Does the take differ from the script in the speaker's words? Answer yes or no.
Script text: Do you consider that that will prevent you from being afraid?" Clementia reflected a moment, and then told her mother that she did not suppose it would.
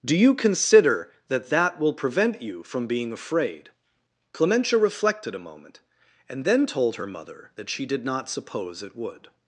no